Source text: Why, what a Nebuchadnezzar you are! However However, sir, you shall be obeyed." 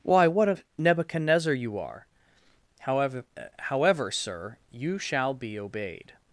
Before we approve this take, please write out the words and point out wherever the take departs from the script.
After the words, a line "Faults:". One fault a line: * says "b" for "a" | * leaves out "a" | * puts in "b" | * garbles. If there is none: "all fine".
Why, what a Nebuchadnezzar you are! However However, sir, you shall be obeyed."
Faults:
all fine